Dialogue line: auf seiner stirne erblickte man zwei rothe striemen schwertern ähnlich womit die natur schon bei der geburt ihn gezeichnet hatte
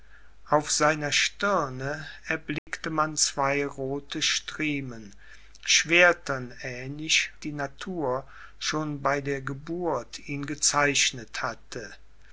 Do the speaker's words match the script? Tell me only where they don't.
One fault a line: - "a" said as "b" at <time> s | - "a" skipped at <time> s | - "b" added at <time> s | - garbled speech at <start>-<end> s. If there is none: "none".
- "womit" skipped at 7.3 s